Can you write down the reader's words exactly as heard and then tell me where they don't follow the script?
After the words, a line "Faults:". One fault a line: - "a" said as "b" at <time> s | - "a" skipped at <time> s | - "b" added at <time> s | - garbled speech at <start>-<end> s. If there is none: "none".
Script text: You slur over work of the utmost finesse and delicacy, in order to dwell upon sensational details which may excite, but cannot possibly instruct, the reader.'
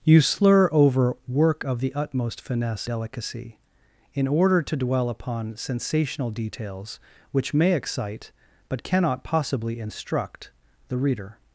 You slur over work of the utmost finesse delicacy, in order to dwell upon sensational details which may excite, but cannot possibly instruct, the reader.'
Faults:
- "and" skipped at 2.9 s